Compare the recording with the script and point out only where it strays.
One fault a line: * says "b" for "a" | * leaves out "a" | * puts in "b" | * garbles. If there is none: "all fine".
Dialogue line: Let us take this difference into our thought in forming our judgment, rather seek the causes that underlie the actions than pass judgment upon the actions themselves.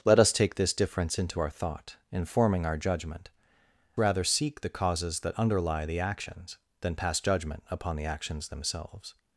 all fine